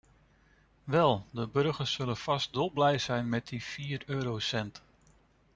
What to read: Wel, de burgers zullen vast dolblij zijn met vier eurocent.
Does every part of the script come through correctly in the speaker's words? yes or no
no